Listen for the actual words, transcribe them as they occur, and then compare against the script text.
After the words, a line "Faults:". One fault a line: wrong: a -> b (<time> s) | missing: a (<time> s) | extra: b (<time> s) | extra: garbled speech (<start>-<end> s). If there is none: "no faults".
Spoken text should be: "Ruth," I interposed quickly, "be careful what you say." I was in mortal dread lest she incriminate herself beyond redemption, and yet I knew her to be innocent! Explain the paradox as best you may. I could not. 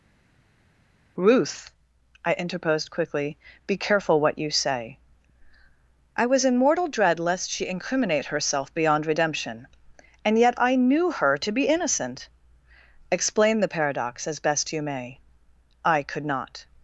"Ruth," I interposed quickly, "be careful what you say." I was in mortal dread lest she incriminate herself beyond redemption, and yet I knew her to be innocent! Explain the paradox as best you may. I could not.
Faults:
no faults